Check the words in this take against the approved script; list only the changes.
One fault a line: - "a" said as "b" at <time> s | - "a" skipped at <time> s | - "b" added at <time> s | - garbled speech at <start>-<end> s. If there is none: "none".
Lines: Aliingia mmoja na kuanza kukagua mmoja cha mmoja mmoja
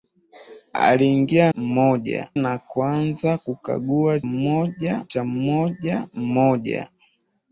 none